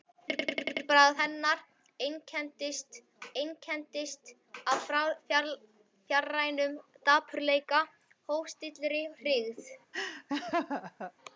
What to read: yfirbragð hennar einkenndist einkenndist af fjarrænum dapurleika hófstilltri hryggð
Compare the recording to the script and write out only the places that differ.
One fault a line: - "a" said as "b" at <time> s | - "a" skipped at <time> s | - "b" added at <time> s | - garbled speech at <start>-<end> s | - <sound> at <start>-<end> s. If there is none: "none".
- laugh at 9.9-11.1 s